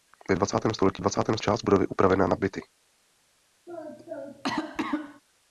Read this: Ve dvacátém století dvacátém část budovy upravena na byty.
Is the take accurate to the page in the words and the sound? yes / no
no